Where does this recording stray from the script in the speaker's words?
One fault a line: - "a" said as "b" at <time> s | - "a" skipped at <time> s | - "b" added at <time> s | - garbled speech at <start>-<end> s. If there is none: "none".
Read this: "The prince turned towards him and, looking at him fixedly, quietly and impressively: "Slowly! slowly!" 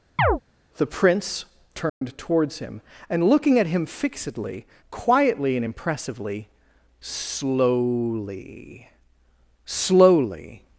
none